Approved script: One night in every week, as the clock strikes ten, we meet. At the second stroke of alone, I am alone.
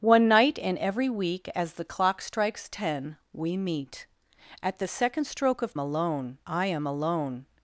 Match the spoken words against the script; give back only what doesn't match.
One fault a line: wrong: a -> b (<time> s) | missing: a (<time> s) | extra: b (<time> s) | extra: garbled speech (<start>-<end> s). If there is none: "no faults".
no faults